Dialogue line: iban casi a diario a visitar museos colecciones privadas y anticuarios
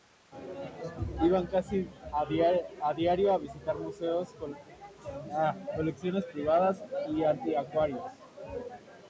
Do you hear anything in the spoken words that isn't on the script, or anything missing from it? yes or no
no